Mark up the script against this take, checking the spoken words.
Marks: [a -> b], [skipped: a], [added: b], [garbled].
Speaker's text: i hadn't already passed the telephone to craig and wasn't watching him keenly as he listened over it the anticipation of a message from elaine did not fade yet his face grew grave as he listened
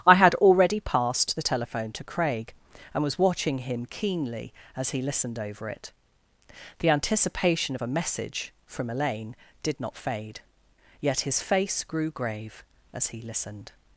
i [hadn't -> had] already passed the telephone to craig and [wasn't -> was] watching him keenly as he listened over it the anticipation of a message from elaine did not fade yet his face grew grave as he listened